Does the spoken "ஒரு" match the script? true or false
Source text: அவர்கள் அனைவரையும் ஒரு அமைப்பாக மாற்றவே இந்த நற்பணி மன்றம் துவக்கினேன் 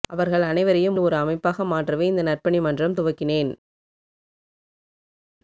true